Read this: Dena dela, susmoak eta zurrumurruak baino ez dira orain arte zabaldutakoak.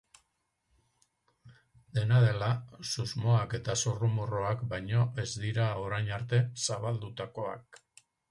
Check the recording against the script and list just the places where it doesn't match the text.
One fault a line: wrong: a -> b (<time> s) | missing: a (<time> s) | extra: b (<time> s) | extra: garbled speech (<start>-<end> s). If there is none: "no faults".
no faults